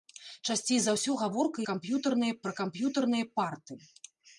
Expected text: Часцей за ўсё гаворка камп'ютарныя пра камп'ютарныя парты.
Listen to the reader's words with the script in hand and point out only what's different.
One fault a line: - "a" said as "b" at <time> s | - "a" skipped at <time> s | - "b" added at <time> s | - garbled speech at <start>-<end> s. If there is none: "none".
none